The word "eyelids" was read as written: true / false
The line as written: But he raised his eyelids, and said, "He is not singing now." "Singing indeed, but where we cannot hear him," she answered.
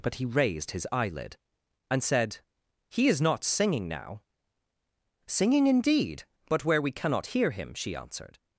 false